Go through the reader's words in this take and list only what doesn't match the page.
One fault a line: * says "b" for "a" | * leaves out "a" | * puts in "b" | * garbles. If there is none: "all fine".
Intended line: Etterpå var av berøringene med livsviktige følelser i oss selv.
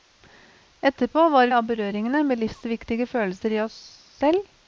all fine